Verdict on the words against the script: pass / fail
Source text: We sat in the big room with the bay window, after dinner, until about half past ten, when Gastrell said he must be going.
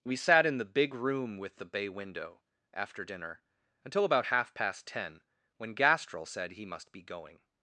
pass